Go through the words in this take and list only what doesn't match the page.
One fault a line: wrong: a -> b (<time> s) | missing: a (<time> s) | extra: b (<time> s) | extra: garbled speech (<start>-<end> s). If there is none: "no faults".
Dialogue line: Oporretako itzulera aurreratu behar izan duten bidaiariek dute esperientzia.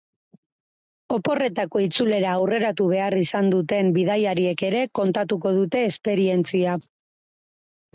extra: ere kontatuko (4.7 s)